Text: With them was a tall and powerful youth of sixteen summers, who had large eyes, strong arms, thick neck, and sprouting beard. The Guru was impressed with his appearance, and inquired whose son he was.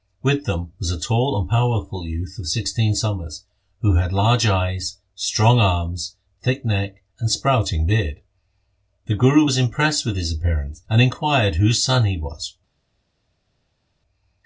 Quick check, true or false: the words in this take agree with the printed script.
true